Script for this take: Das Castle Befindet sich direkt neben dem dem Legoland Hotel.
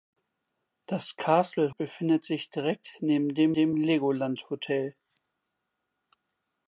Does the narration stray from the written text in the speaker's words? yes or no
no